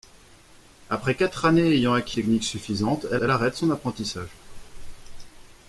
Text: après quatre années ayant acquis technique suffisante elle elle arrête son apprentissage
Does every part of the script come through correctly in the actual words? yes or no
yes